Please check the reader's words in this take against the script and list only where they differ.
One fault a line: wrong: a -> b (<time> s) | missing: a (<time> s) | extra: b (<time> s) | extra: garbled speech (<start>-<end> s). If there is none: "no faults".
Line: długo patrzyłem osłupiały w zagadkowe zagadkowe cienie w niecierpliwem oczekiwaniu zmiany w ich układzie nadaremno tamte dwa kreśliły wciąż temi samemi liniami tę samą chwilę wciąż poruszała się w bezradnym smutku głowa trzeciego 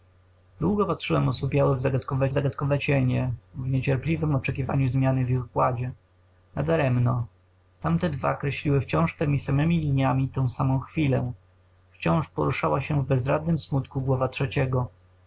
no faults